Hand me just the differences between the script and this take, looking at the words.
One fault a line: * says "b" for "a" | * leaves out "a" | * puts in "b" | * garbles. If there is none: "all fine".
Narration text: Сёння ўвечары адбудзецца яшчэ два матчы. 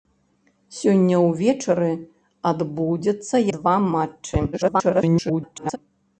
* leaves out "яшчэ"
* garbles